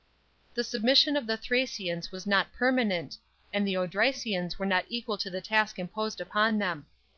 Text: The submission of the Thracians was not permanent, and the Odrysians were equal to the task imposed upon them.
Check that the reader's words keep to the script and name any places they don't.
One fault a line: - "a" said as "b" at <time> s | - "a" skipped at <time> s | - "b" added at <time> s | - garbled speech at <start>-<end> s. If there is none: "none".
- "not" added at 4.7 s